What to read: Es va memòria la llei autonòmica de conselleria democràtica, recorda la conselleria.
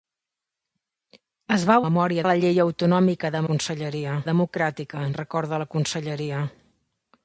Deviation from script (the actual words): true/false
false